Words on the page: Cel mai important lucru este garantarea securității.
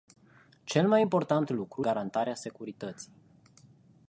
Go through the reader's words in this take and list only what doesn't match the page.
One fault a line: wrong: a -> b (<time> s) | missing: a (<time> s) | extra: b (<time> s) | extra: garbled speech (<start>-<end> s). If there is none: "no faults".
missing: este (1.9 s)